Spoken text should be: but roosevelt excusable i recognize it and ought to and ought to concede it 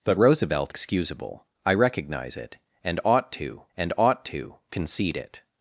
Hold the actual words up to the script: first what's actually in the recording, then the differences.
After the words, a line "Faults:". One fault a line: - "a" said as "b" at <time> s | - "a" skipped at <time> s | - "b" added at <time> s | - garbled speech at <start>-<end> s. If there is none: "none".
but roosevelt excusable i recognize it and ought to and ought to concede it
Faults:
none